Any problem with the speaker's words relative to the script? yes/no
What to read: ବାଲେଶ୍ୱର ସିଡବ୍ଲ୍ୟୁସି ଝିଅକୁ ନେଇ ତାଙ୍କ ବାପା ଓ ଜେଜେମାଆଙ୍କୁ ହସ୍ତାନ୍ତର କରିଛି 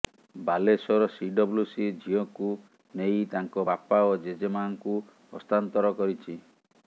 no